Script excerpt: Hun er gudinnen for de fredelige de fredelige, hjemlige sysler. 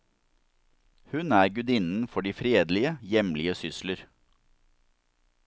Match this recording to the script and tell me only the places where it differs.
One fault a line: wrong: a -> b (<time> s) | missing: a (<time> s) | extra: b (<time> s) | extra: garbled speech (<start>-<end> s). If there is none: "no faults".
missing: de fredelige (3.0 s)